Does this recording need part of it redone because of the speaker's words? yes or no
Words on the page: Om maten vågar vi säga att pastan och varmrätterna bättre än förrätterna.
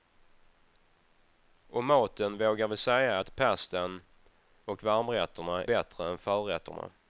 no